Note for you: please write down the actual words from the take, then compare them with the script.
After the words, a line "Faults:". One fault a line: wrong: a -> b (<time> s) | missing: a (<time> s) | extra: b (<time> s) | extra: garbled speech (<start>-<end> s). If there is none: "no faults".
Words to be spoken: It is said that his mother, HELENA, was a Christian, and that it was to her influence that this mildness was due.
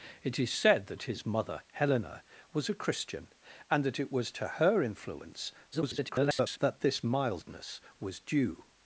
It is said that his mother, HELENA, was a Christian, and that it was to her influence [garbled] that this mildness was due.
Faults:
extra: garbled speech (5.7-6.6 s)